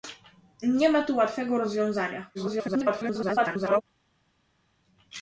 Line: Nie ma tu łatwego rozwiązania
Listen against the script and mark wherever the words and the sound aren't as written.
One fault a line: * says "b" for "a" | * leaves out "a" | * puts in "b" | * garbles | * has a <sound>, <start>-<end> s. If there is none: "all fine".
* garbles